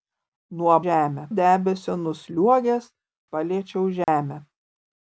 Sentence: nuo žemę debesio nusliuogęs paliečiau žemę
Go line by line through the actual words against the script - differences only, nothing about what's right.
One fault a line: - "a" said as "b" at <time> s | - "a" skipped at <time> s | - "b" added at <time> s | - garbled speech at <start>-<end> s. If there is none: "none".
none